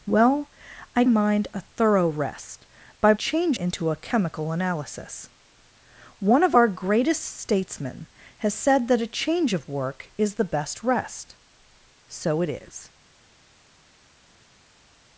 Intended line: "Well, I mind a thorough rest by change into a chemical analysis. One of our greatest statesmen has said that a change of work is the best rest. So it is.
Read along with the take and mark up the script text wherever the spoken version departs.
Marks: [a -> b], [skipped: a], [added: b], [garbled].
"Well, I mind a thorough rest by change into a chemical analysis. One of our greatest statesmen has said that a change of work is the best rest. So it is.